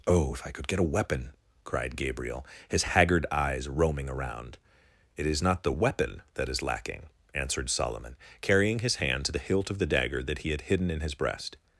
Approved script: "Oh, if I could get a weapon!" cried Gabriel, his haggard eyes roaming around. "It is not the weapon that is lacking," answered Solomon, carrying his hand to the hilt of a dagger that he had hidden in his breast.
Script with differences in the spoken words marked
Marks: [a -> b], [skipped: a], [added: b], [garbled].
"Oh, if I could get a weapon!" cried Gabriel, his haggard eyes roaming around. "It is not the weapon that is lacking," answered Solomon, carrying his hand to the hilt of [a -> the] dagger that he had hidden in his breast.